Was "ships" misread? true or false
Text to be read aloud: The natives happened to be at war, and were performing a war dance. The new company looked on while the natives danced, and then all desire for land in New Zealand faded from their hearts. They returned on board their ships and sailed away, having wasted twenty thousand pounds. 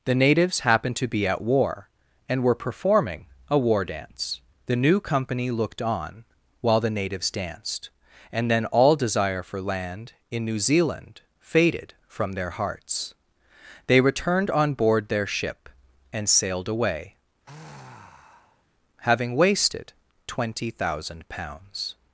true